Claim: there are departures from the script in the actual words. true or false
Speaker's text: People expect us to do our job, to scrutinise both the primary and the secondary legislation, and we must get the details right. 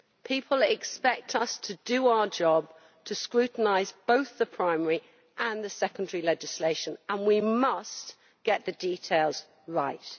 false